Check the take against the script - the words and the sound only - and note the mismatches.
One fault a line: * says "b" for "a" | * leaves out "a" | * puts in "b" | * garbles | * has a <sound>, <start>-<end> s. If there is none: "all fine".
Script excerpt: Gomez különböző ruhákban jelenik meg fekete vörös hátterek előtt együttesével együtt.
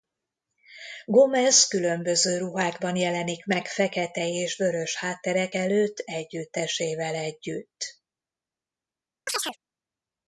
* puts in "és"
* has a chirp, 9.3-9.6 s